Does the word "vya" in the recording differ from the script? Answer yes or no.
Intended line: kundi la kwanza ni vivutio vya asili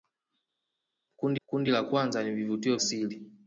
yes